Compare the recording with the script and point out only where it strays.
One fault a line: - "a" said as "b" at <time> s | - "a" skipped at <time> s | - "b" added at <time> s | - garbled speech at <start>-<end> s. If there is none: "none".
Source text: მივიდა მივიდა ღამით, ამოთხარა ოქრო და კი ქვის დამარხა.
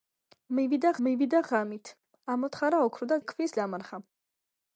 none